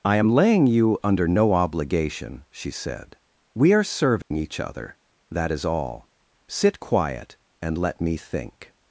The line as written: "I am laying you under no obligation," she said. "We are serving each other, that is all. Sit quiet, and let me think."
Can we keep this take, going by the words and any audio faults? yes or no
no